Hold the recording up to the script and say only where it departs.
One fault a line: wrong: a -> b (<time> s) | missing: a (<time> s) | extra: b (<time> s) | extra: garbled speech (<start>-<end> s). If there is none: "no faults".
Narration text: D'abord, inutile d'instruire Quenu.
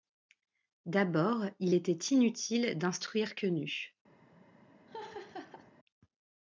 extra: il était (1.6 s)